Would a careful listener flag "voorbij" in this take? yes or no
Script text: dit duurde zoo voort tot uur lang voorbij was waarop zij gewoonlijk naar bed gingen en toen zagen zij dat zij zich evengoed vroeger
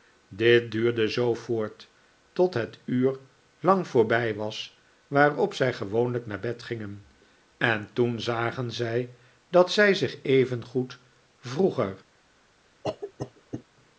no